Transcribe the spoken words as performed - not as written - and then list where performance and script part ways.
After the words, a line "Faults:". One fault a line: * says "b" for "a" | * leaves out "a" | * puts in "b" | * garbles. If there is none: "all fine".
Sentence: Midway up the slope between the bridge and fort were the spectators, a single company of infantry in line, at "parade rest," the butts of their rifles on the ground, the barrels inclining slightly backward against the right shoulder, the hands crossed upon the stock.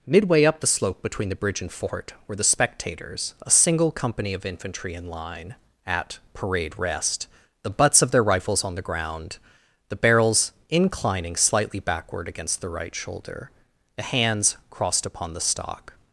Midway up the slope between the bridge and fort were the spectators, a single company of infantry in line, at "parade rest," the butts of their rifles on the ground, the barrels inclining slightly backward against the right shoulder, the hands crossed upon the stock.
Faults:
all fine